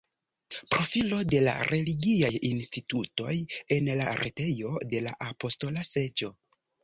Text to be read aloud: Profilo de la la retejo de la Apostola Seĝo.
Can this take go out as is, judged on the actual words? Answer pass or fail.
fail